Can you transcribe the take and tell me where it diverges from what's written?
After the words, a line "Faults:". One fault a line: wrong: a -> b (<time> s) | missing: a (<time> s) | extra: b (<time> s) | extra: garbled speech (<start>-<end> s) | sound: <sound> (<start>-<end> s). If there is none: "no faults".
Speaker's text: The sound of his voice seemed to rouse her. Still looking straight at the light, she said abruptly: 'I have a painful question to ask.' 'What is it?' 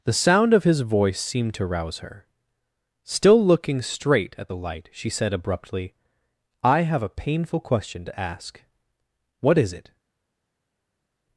The sound of his voice seemed to rouse her. Still looking straight at the light, she said abruptly: 'I have a painful question to ask.' 'What is it?'
Faults:
no faults